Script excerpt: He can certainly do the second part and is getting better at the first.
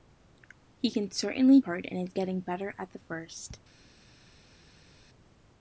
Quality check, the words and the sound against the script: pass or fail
fail